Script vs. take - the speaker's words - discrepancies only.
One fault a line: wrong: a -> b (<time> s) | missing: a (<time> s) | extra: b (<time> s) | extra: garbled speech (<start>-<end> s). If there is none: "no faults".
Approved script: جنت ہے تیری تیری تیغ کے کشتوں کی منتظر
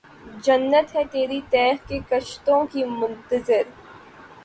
missing: تیری (1.4 s)